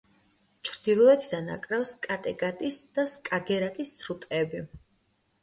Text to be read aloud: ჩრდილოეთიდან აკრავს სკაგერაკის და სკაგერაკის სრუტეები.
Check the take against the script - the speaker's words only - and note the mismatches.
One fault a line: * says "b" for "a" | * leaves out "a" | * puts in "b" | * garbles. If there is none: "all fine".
* says "კატეგატის" for "სკაგერაკის"